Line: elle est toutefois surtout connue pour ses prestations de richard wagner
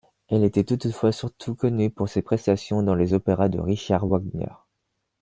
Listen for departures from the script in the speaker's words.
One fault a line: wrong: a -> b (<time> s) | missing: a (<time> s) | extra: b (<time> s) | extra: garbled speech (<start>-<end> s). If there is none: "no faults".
wrong: est -> était (0.4 s)
extra: dans les opéras (2.8 s)